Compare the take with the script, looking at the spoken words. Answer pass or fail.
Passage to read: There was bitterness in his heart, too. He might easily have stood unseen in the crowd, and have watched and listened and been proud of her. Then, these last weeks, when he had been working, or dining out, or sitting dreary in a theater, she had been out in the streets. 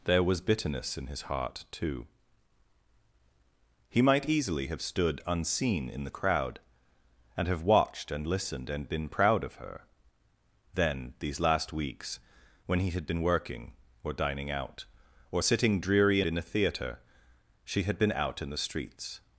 pass